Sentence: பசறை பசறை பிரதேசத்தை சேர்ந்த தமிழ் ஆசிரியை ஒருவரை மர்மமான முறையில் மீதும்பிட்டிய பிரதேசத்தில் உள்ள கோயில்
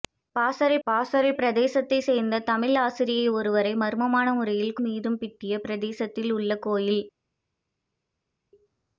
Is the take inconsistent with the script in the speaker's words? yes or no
no